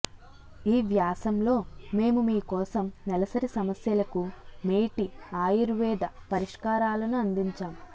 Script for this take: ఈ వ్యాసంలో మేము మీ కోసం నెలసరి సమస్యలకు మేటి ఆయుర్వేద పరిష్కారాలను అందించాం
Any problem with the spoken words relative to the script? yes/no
no